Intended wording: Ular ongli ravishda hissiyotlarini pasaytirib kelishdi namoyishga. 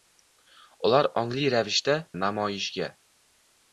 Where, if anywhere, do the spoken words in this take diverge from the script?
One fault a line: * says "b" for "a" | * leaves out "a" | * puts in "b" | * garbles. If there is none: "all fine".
* leaves out "hissiyotlarini pasaytirib kelishdi"